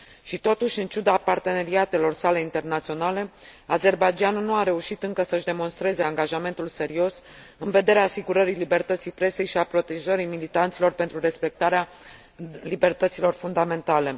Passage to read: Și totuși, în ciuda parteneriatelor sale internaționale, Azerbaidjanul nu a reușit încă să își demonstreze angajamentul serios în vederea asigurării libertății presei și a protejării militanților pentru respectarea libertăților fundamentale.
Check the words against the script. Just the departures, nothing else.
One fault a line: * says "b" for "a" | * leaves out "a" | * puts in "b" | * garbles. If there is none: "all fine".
all fine